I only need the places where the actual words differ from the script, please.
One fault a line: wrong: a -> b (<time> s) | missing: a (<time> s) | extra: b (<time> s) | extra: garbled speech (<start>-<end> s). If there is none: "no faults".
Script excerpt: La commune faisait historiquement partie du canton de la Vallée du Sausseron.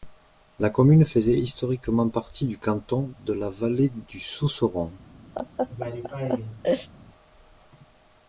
no faults